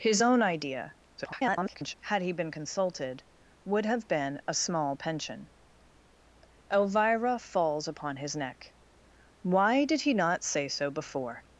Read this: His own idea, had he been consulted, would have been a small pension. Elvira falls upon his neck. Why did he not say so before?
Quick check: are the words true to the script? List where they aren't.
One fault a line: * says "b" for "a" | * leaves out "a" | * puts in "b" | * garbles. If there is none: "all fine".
* garbles